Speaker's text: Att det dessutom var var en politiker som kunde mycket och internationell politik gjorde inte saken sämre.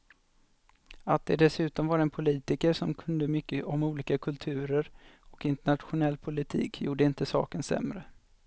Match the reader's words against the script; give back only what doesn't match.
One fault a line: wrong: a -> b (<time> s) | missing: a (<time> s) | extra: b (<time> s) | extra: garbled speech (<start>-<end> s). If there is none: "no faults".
missing: var (2.0 s)
extra: om olika kulturer (3.6 s)